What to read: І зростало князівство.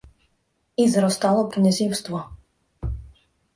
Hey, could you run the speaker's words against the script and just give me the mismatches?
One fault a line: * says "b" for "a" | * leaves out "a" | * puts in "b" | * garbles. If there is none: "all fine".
all fine